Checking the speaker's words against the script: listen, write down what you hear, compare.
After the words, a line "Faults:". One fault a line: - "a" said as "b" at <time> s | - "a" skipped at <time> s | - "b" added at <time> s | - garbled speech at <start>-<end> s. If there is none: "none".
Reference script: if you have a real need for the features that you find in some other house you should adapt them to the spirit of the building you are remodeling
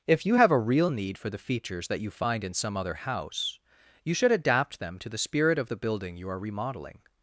if you have a real need for the features that you find in some other house you should adapt them to the spirit of the building you are remodeling
Faults:
none